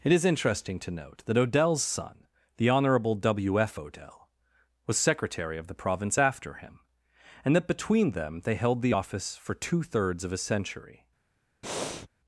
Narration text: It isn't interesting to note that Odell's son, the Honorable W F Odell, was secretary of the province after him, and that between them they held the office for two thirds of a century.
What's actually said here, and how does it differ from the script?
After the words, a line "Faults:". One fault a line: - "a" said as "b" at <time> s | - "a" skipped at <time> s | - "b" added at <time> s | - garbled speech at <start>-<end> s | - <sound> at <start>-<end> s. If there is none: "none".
It is interesting to note that Odell's son, the Honorable W F Odell, was secretary of the province after him, and that between them they held the office for two thirds of a century.
Faults:
- "isn't" said as "is" at 0.1 s
- breath at 11.6-12.1 s